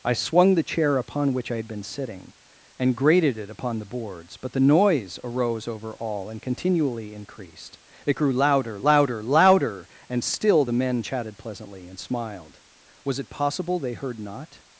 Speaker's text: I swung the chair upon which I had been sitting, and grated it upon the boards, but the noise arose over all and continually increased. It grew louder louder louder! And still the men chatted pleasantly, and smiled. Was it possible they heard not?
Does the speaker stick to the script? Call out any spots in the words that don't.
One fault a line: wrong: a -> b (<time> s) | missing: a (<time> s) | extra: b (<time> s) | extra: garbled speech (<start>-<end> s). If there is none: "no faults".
no faults